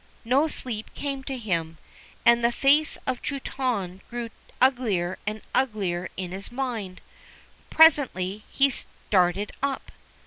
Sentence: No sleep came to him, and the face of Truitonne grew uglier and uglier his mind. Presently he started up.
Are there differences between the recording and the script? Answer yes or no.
yes